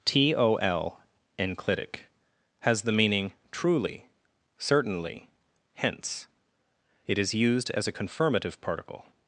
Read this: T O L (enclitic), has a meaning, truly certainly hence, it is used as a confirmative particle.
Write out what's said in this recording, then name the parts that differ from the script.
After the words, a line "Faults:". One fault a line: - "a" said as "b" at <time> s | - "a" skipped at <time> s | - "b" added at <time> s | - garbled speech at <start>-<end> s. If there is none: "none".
T O L (enclitic), has the meaning, truly certainly hence, it is used as a confirmative particle.
Faults:
- "a" said as "the" at 2.8 s